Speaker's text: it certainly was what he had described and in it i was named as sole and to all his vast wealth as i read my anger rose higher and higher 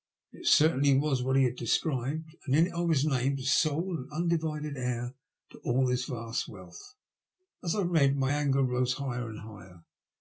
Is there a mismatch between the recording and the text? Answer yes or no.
yes